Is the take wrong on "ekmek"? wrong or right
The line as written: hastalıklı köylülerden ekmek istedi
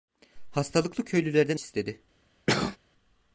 wrong